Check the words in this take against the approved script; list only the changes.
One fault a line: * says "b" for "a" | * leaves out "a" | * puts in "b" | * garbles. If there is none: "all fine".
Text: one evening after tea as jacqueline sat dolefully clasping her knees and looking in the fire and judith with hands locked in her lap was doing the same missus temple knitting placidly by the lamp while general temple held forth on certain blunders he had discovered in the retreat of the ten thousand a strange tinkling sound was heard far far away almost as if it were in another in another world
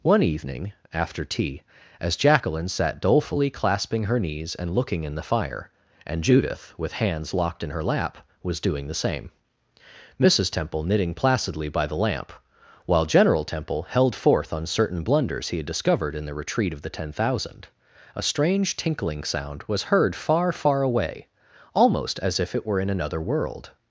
* leaves out "in another"